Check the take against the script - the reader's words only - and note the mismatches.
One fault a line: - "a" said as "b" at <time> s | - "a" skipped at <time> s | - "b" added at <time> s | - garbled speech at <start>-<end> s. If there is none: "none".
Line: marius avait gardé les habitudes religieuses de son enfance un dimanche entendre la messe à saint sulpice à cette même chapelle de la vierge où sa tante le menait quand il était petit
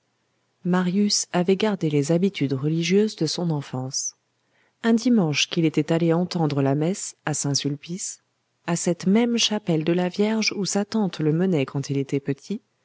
- "qu'il était allé" added at 5.5 s